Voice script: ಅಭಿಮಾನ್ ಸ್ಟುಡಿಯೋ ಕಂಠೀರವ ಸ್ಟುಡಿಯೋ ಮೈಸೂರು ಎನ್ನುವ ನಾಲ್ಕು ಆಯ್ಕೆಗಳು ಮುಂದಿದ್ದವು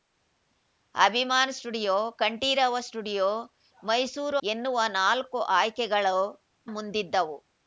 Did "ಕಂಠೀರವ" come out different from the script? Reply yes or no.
no